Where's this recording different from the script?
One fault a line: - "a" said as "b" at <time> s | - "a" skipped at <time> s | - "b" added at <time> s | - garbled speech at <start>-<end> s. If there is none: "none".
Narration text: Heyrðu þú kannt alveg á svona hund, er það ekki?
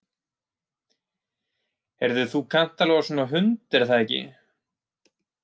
none